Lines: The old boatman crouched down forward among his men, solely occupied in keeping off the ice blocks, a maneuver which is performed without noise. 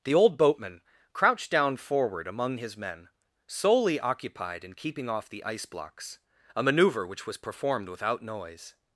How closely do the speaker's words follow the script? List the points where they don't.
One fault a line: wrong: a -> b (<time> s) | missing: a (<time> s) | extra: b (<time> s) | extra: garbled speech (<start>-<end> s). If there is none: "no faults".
wrong: is -> was (7.3 s)